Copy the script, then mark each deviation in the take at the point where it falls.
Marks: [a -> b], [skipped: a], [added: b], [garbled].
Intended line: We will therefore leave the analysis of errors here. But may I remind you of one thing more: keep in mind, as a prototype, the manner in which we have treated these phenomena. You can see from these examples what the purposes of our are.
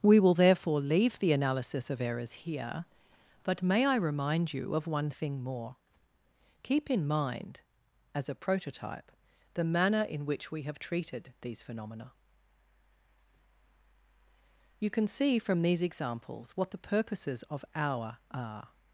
We will therefore leave the analysis of errors here. But may I remind you of one thing more: keep in mind, as a prototype, the manner in which we have treated these phenomena. You can see from these examples what the purposes of our are.